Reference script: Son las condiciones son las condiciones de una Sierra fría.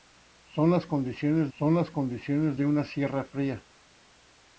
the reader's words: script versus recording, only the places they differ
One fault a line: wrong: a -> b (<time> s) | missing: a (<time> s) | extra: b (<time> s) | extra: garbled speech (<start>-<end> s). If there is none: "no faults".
no faults